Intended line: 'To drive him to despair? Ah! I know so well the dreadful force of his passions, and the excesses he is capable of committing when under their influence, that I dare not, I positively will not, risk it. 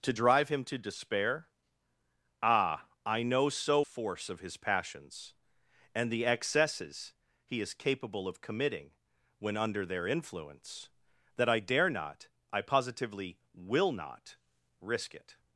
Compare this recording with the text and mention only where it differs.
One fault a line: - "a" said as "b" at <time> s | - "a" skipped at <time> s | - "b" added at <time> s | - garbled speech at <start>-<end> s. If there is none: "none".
- "well the dreadful" skipped at 3.8 s